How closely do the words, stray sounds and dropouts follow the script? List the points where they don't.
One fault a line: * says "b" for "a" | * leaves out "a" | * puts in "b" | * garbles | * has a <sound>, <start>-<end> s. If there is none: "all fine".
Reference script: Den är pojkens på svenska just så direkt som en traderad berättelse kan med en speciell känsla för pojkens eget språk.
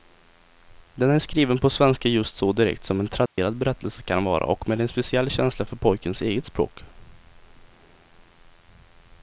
* says "skriven" for "pojkens"
* has a dropout, 3.3-3.4 s
* puts in "vara och"